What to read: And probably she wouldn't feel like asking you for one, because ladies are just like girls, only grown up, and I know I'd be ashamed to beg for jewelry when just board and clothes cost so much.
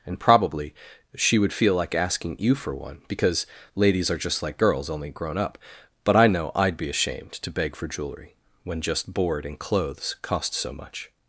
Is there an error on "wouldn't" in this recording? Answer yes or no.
yes